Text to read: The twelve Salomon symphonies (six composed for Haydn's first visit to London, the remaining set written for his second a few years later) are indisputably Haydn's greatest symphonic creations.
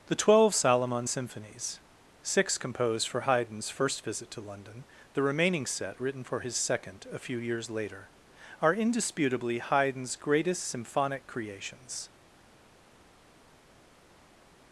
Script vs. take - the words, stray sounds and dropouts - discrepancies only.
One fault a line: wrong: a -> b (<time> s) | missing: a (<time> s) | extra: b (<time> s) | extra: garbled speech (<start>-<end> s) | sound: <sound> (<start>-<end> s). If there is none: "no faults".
no faults